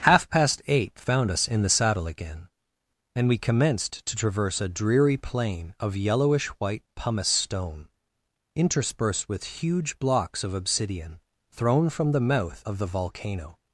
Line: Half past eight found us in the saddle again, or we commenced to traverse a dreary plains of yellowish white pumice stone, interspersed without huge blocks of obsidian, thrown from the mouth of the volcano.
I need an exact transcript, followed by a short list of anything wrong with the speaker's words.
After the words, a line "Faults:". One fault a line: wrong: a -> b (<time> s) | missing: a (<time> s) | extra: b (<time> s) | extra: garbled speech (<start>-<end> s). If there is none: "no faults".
Half past eight found us in the saddle again, and we commenced to traverse a dreary plain of yellowish white pumice stone, interspersed with huge blocks of obsidian, thrown from the mouth of the volcano.
Faults:
wrong: or -> and (3.1 s)
wrong: plains -> plain (5.2 s)
wrong: without -> with (9.3 s)